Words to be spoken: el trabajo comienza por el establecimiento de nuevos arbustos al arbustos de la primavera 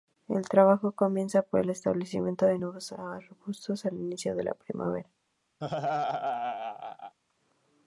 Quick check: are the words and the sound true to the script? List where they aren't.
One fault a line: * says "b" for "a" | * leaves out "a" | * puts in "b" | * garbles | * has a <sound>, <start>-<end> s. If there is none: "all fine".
* says "inicio" for "arbustos"
* has a laugh, 5.6-7.2 s